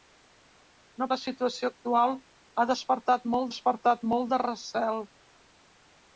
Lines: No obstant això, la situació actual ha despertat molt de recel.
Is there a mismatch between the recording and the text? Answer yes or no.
yes